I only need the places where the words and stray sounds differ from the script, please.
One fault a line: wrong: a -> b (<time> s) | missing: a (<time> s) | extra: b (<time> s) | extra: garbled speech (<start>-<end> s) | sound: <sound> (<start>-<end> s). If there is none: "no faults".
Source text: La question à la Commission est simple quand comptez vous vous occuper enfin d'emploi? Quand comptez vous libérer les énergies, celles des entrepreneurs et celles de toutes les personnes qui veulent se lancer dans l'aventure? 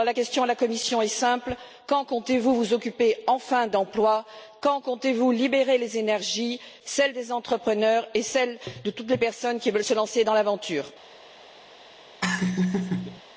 sound: laugh (12.2-13.2 s)